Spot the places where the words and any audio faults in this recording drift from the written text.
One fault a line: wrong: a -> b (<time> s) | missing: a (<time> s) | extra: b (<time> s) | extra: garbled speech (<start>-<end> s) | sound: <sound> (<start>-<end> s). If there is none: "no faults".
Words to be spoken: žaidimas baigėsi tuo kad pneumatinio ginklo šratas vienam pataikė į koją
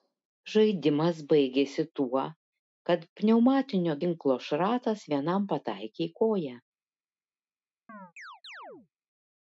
sound: chirp (7.9-8.9 s)